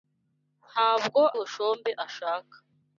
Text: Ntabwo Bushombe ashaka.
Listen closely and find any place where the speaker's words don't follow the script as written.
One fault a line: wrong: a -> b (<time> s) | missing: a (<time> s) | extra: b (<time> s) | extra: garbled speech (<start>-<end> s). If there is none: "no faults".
no faults